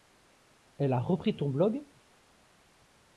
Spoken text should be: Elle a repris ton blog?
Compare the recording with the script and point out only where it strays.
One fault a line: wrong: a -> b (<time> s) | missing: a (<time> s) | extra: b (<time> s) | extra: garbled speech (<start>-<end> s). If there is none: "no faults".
no faults